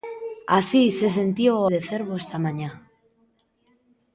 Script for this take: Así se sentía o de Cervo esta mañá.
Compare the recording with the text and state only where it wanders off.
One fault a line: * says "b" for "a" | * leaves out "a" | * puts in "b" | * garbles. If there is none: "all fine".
all fine